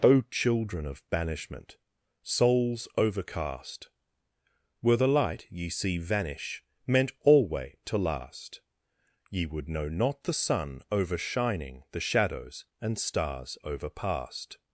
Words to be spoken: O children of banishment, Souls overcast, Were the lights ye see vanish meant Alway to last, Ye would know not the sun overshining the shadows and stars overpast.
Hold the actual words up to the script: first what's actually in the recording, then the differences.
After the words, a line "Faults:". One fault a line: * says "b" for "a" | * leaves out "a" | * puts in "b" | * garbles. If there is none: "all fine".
O children of banishment, Souls overcast, Were the light ye see vanish meant Alway to last, Ye would know not the sun overshining the shadows and stars overpast.
Faults:
* says "light" for "lights"